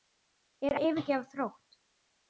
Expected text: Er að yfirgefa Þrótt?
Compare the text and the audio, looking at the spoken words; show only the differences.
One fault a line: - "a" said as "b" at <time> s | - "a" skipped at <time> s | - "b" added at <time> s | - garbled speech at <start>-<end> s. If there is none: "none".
none